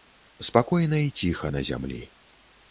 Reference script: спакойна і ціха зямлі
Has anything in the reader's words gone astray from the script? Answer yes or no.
yes